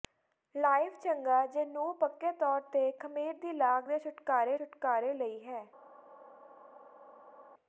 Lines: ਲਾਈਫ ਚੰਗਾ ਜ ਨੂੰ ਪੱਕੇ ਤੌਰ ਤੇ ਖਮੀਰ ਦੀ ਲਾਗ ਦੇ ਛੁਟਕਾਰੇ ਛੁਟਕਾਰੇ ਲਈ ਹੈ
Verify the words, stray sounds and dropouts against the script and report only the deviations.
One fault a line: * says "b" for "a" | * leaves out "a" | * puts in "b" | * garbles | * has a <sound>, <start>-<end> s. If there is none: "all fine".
all fine